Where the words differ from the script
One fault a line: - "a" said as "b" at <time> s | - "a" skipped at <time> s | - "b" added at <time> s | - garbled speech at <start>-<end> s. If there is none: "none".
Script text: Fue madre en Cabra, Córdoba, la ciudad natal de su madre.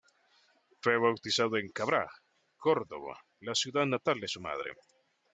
- "madre" said as "bautizado" at 1.0 s